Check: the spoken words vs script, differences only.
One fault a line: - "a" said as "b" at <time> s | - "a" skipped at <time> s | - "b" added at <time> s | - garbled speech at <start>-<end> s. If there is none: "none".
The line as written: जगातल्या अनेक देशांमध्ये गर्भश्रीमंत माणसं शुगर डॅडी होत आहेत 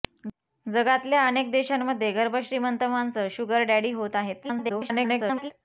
- garbled speech at 4.4-5.5 s